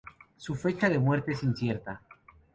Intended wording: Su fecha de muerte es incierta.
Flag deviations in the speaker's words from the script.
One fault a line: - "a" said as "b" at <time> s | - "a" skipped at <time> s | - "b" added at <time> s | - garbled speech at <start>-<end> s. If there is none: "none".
none